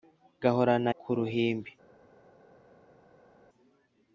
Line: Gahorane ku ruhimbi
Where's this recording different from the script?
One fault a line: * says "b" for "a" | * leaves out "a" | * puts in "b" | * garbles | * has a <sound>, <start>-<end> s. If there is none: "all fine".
all fine